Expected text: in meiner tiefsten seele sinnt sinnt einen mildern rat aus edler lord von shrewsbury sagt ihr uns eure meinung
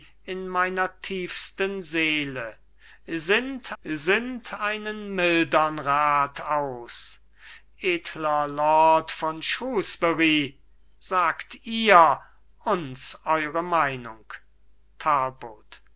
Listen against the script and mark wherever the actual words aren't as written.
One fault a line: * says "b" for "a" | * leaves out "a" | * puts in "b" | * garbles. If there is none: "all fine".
all fine